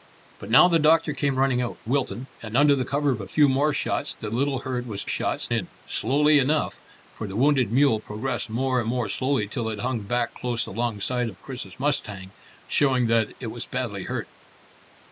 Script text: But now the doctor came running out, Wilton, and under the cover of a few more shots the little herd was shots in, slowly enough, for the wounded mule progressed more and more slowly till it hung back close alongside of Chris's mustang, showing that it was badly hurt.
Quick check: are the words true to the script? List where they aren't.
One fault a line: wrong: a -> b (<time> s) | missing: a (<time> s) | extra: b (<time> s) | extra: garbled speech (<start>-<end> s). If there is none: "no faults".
no faults